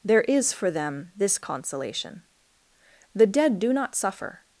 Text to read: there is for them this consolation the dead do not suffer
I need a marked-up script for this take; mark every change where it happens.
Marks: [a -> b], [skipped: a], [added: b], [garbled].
there is for them this consolation the dead do not suffer